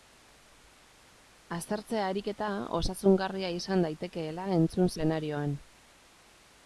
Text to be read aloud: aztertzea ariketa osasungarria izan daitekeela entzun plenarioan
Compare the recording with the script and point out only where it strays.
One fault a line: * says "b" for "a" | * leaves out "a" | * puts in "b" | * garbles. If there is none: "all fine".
all fine